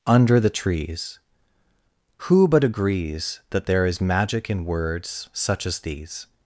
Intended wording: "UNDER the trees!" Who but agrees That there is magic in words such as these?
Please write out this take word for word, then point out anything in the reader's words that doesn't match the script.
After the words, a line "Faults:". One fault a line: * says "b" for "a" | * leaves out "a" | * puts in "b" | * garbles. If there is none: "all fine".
"UNDER the trees!" Who but agrees That there is magic in words such as these?
Faults:
all fine